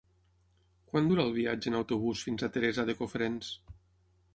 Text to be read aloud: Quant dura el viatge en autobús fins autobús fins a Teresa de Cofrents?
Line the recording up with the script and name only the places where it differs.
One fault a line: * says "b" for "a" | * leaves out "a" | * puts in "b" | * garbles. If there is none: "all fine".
* leaves out "autobús fins"